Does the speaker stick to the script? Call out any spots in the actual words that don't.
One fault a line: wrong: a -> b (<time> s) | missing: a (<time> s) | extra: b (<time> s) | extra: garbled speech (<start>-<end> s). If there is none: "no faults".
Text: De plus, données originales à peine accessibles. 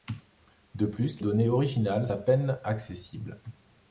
no faults